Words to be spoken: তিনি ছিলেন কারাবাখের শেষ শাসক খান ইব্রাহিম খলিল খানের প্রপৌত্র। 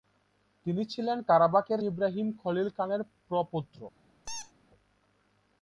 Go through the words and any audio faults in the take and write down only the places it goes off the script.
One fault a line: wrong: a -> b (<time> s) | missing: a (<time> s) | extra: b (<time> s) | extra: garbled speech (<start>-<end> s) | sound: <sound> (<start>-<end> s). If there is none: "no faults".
missing: শেষ শাসক খান (1.8 s)
sound: squeak (4.2-4.5 s)